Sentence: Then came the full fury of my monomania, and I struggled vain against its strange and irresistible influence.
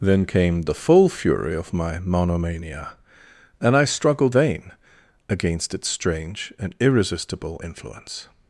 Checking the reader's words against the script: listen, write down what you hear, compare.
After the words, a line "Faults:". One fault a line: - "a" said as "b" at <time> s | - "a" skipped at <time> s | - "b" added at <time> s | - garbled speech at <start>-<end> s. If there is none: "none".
Then came the full fury of my monomania, and I struggled vain against its strange and irresistible influence.
Faults:
none